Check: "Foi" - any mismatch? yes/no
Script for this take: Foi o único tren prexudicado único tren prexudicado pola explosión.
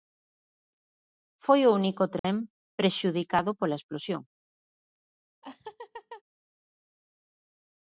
no